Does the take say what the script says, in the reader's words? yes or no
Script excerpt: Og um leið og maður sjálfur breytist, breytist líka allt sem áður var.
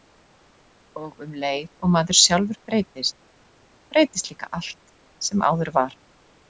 yes